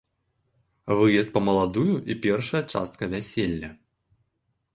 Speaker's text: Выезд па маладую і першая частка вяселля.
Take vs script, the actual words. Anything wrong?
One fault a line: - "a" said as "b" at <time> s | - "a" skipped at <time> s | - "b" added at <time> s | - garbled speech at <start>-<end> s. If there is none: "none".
none